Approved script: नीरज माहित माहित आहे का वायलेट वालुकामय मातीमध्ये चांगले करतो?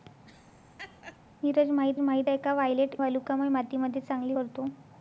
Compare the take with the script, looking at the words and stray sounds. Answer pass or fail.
fail